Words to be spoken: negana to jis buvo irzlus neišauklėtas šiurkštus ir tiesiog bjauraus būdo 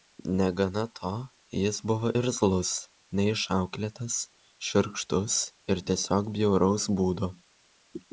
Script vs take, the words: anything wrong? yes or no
no